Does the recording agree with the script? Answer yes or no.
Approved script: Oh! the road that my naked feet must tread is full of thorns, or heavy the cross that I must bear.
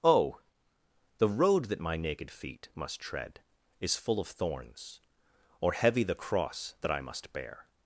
yes